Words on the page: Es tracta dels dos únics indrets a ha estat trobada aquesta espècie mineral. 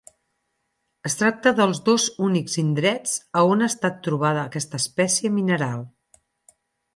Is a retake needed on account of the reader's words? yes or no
yes